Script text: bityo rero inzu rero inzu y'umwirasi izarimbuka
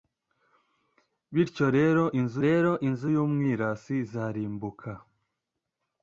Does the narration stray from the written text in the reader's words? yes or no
no